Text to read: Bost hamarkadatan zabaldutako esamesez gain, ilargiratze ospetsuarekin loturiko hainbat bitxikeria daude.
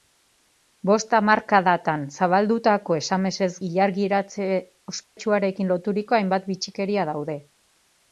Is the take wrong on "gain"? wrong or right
wrong